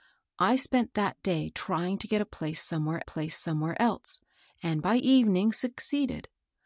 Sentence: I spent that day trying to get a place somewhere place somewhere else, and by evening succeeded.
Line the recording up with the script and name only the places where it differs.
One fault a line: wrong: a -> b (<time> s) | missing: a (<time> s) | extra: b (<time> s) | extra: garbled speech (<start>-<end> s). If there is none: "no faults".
no faults